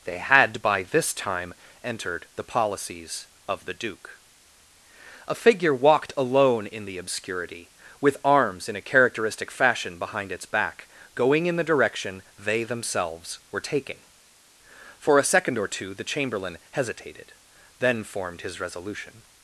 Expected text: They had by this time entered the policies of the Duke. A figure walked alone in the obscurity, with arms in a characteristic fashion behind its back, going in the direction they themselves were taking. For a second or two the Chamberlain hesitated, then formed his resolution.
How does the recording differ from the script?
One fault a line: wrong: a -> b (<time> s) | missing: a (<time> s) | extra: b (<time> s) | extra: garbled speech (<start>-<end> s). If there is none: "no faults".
no faults